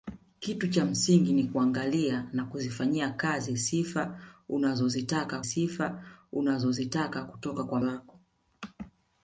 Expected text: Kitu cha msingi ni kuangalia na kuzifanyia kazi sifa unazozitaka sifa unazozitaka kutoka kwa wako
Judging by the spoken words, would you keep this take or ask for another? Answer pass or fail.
pass